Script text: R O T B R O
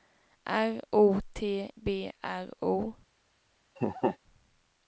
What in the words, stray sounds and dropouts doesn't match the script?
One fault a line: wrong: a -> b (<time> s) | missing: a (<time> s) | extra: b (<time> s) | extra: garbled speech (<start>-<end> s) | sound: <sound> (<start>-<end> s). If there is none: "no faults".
sound: laugh (3.8-4.2 s)